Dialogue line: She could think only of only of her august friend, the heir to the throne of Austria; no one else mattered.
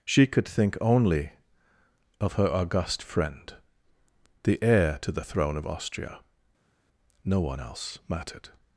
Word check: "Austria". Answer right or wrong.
right